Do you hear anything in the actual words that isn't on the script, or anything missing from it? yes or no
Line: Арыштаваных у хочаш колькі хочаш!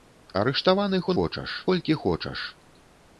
no